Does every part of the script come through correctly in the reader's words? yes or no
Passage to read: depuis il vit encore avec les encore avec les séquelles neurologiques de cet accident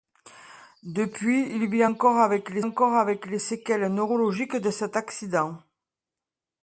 yes